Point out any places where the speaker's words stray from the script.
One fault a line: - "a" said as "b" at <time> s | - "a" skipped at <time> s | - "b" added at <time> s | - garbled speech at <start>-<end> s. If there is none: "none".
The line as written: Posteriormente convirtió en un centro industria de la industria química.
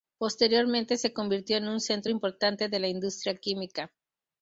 - "se" added at 1.0 s
- "industria" said as "importante" at 2.1 s